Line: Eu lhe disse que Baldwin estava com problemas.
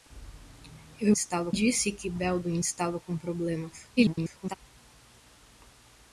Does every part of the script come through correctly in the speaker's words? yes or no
no